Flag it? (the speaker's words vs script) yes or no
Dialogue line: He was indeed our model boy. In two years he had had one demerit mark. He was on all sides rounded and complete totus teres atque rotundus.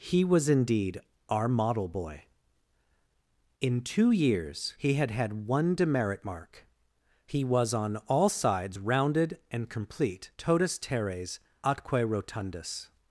no